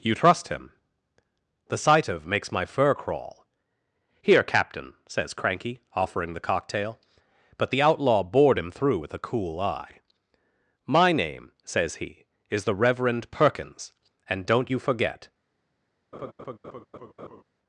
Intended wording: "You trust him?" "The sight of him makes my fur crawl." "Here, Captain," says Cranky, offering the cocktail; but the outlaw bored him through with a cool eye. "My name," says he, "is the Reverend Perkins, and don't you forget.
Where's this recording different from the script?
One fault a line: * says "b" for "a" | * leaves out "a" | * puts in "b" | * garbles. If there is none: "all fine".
* leaves out "him"